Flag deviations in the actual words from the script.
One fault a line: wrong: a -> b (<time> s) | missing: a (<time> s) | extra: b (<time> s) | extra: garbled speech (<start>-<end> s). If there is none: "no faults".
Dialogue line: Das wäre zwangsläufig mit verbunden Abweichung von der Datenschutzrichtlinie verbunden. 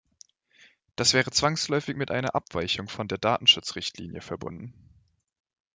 wrong: verbunden -> einer (2.1 s)